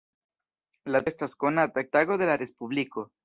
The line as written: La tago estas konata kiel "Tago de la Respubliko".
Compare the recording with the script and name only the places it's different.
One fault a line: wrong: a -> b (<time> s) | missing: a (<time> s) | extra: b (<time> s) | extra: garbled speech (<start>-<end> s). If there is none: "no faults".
missing: tago (1.0 s)
missing: kiel (1.8 s)